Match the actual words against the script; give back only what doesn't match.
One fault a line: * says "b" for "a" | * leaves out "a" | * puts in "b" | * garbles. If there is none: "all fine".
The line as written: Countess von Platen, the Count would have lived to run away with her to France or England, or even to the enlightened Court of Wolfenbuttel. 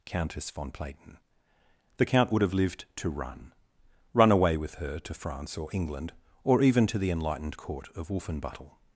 * puts in "run"